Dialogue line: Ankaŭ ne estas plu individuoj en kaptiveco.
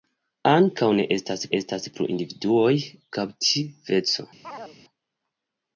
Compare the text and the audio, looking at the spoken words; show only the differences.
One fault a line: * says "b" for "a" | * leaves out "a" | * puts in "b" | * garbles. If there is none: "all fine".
* puts in "estas"
* leaves out "en"